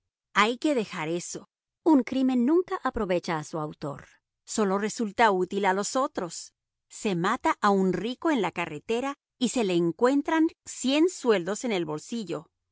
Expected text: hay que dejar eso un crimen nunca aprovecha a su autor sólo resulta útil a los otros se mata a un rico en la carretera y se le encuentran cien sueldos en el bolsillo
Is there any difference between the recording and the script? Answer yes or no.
no